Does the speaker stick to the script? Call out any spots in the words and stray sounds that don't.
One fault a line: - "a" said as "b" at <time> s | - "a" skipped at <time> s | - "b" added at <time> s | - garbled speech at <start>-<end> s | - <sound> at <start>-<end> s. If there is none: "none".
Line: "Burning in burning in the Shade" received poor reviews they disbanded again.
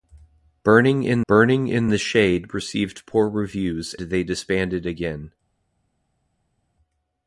none